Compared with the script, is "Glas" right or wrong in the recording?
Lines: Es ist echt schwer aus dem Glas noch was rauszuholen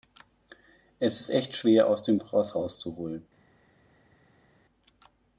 wrong